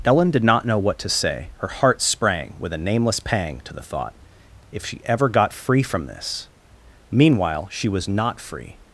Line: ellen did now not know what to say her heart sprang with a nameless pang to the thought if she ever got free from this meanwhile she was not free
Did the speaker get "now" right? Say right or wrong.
wrong